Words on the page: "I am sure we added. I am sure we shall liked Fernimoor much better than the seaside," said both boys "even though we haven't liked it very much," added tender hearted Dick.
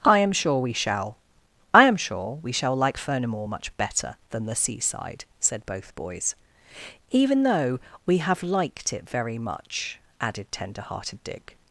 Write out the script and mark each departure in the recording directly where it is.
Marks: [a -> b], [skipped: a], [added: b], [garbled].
"I am sure we [added. -> shall] I am sure we shall [liked -> like] Fernimoor much better than the seaside," said both boys "even though we [haven't -> have] liked it very much," added tender hearted Dick.